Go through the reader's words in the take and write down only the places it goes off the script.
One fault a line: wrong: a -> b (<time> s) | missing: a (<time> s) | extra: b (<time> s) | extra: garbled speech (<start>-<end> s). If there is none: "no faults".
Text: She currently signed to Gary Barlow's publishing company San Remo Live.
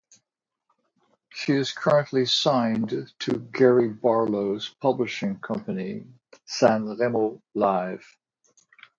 extra: is (1.5 s)